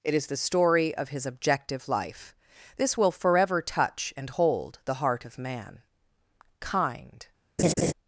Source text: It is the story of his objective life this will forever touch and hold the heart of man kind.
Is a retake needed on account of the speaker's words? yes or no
no